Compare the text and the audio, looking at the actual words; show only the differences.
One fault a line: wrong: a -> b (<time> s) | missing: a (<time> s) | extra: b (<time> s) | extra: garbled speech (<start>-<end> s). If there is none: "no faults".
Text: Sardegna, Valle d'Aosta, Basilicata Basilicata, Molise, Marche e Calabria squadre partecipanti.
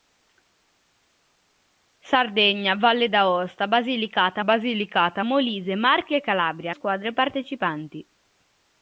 no faults